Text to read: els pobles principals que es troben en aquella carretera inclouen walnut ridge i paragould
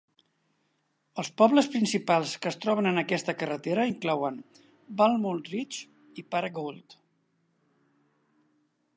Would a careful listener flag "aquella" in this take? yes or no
yes